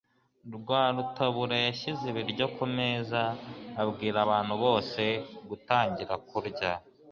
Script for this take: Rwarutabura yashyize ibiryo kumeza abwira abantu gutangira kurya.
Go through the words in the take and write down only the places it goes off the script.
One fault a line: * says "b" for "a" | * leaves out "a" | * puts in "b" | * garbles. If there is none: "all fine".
* puts in "bose"